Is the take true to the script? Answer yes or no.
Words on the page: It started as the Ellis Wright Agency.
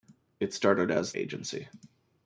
no